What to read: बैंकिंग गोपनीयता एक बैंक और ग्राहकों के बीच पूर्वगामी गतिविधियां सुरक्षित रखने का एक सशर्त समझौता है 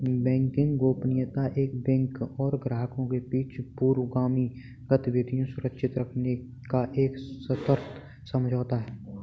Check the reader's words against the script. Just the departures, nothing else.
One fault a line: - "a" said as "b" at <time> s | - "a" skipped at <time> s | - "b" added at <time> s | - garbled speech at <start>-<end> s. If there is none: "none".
none